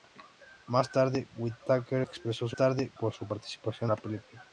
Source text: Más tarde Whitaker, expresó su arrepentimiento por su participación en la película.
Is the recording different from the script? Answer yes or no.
yes